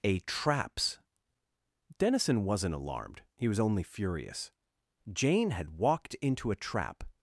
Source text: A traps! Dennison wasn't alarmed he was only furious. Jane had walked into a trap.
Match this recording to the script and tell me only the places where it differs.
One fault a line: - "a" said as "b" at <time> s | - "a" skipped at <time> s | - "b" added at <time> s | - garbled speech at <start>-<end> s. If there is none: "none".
none